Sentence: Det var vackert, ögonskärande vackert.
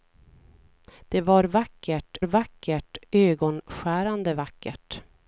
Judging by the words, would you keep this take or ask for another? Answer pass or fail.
fail